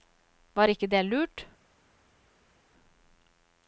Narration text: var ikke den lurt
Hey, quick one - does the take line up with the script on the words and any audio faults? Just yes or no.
no